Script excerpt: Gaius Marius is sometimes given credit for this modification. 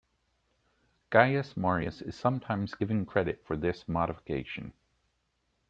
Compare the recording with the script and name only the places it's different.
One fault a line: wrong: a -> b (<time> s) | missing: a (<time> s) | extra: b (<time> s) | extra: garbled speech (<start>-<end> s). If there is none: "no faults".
no faults